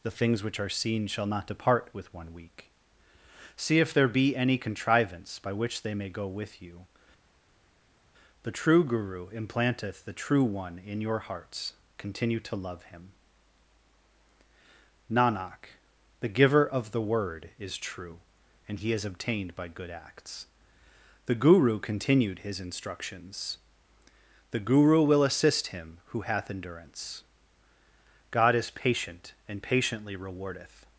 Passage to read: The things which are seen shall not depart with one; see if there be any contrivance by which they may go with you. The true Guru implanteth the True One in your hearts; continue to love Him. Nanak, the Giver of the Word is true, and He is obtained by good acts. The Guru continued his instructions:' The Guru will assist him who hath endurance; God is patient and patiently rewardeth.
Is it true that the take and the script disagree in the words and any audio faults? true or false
true